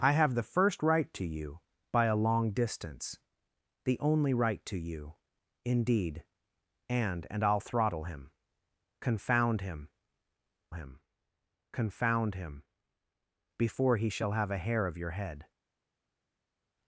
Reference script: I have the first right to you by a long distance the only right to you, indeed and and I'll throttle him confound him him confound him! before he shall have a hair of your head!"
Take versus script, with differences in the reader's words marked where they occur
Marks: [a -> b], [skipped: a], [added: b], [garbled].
I have the first right to you by a long distance the only right to you, indeed and and I'll throttle him confound him him confound him! before he shall have a hair of your head!"